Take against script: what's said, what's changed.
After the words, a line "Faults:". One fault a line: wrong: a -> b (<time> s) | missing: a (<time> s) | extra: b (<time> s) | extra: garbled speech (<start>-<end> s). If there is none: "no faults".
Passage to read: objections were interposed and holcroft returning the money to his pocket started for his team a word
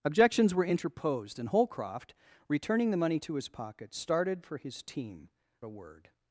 objections were interposed and holcroft returning the money to his pocket started for his team a word
Faults:
no faults